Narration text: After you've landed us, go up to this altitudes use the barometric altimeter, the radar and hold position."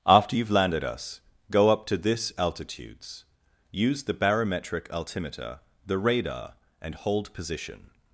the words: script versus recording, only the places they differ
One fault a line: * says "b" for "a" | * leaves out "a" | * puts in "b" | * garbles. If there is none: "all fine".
all fine